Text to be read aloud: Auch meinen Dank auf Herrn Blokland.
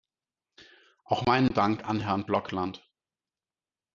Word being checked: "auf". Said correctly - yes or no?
no